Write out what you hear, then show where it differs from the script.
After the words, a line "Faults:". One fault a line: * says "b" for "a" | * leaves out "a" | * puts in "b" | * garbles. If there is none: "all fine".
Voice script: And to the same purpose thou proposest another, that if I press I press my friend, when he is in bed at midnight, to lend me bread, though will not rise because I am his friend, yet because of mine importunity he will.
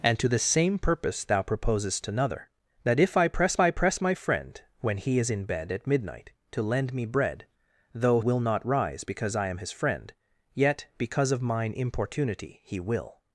And to the same purpose thou proposest another, that if I press I press my friend, when he is in bed at midnight, to lend me bread, though will not rise because I am his friend, yet because of mine importunity he will.
Faults:
all fine